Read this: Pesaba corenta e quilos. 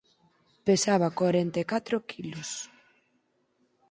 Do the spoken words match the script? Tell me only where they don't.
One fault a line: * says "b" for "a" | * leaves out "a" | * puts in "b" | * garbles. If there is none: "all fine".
* puts in "catro"